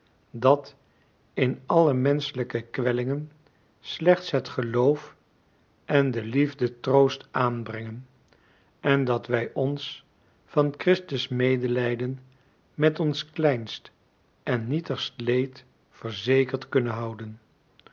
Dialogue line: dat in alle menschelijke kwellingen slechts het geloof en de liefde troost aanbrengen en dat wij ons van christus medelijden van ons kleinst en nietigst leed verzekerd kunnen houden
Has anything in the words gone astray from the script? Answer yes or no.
yes